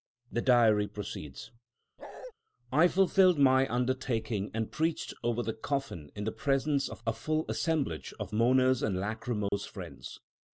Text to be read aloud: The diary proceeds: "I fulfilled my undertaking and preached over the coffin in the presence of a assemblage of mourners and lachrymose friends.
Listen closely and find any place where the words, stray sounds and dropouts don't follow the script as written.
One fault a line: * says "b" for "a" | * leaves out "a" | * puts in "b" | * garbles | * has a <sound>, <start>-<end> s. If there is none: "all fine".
* has a bark, 2.0-2.3 s
* puts in "full"
* has a dropout, 9.5-9.5 s